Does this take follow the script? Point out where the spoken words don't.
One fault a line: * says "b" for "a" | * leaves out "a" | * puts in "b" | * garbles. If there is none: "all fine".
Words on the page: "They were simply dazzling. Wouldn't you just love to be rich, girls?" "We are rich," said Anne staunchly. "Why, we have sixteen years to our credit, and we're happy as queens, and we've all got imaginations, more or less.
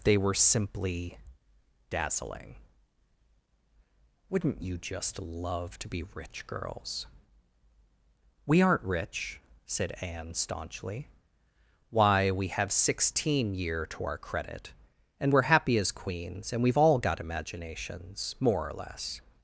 * says "aren't" for "are"
* says "year" for "years"